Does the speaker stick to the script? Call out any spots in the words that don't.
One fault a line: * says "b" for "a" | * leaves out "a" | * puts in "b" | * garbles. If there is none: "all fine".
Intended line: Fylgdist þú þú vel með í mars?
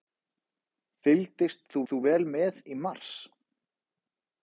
all fine